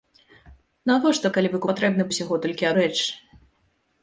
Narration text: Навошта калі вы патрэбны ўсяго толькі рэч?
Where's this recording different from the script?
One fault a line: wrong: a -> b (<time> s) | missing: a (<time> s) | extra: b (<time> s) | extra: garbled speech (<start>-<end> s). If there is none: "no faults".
no faults